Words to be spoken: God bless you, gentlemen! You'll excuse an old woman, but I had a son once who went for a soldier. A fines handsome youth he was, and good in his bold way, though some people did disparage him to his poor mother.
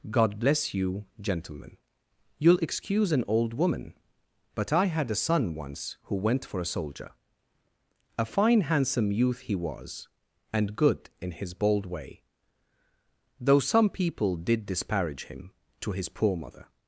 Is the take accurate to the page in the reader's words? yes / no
no